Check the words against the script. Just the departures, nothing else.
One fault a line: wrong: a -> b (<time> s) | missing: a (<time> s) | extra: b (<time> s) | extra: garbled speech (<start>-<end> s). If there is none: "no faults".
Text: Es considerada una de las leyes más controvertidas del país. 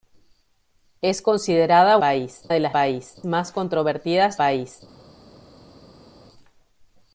wrong: una -> país (2.0 s)
wrong: leyes -> país (2.7 s)
missing: del (4.4 s)